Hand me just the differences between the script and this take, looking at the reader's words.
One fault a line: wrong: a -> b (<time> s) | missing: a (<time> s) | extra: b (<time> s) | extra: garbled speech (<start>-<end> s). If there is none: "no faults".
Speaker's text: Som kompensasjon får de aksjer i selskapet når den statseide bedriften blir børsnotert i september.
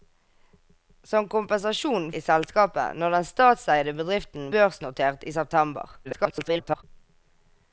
missing: får de aksjer (2.1 s)
missing: blir (4.5 s)
extra: garbled speech (6.0-6.8 s)